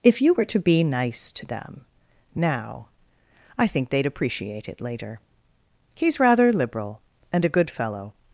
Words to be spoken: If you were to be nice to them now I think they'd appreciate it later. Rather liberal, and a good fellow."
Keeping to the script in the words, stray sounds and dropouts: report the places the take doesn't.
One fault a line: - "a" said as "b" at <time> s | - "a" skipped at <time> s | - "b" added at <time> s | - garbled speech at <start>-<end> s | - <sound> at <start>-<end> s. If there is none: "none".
- "He's" added at 5.9 s